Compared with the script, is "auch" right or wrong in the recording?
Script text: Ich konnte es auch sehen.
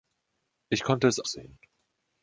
wrong